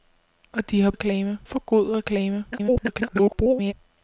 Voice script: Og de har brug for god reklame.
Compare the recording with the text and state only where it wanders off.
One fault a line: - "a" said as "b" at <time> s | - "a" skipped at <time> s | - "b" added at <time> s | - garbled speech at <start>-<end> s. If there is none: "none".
- "brug" said as "reklame" at 0.9 s
- garbled speech at 2.5-3.7 s